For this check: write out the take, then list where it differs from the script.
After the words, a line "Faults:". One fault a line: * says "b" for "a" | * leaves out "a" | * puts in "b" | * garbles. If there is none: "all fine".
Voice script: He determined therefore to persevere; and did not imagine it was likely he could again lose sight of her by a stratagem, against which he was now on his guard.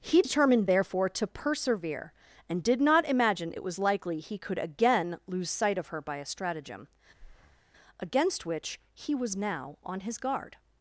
He determined therefore to persevere; and did not imagine it was likely he could again lose sight of her by a stratagem, against which he was now on his guard.
Faults:
all fine